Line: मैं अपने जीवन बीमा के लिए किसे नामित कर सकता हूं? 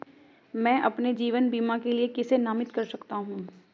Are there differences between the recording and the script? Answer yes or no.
no